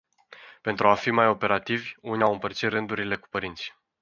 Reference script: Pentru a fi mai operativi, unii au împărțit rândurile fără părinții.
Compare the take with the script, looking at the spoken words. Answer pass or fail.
fail